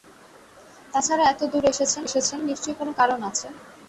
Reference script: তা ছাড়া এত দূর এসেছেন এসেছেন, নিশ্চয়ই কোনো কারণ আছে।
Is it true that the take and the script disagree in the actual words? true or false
false